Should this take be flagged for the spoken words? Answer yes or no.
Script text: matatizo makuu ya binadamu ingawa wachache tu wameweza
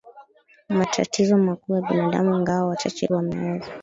yes